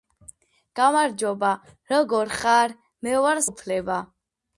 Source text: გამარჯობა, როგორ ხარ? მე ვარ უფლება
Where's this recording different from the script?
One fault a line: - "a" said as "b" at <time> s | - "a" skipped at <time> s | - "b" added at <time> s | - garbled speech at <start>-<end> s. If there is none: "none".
none